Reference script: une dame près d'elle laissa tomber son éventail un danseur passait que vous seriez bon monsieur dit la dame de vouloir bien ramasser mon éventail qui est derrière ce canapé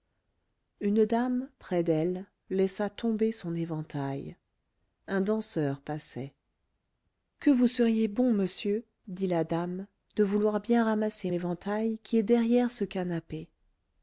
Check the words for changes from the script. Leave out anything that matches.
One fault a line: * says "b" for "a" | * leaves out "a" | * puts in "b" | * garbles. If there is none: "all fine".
* leaves out "mon"